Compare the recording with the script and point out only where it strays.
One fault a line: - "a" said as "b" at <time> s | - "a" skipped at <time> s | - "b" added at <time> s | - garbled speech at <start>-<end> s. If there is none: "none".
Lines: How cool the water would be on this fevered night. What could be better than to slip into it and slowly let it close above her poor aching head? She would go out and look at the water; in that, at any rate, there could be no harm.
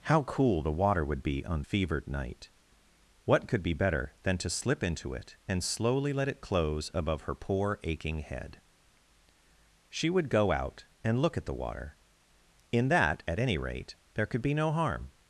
- "this" skipped at 1.6 s